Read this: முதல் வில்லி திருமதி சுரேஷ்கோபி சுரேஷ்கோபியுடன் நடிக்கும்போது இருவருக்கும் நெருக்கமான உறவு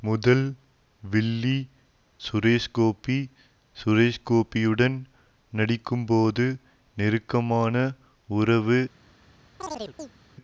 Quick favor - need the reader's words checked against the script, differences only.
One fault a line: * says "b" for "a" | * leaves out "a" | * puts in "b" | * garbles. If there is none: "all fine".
* leaves out "திருமதி"
* leaves out "இருவருக்கும்"